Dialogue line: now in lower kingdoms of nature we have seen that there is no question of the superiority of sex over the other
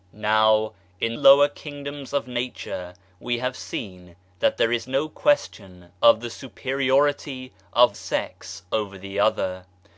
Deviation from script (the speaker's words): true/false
false